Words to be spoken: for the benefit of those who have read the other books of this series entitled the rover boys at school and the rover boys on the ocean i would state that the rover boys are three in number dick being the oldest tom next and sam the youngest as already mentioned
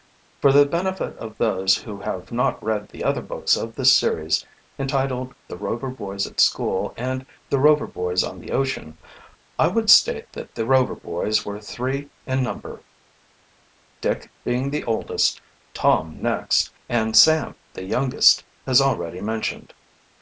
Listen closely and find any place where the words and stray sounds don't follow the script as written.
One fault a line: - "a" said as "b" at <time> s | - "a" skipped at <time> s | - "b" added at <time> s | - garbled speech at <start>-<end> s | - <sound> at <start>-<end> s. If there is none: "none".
- "not" added at 2.3 s
- "are" said as "were" at 11.4 s